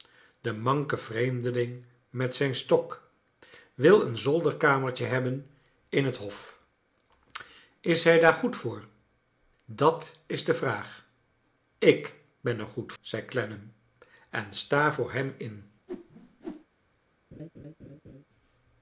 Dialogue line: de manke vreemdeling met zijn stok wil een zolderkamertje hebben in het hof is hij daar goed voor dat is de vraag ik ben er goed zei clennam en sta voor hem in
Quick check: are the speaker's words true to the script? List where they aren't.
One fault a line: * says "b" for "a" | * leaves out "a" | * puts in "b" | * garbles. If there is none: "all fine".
all fine